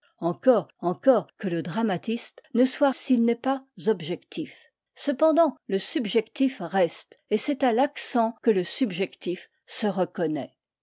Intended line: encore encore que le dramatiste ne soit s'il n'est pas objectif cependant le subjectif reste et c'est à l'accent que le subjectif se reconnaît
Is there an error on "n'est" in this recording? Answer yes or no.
no